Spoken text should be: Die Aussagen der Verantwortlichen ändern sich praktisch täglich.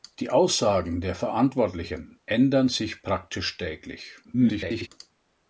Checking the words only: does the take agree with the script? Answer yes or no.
no